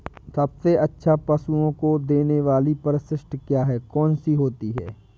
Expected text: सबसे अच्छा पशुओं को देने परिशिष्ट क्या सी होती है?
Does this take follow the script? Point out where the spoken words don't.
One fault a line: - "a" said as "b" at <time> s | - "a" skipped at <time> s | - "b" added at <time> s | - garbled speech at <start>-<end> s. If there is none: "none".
- "वाली" added at 2.4 s
- "है कौन" added at 3.6 s